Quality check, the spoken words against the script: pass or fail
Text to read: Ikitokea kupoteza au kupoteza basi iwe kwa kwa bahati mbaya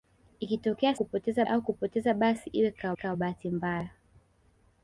pass